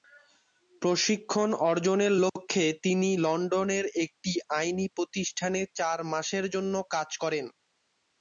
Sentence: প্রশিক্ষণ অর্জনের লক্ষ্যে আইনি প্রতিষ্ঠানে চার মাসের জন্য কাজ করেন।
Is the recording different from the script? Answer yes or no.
yes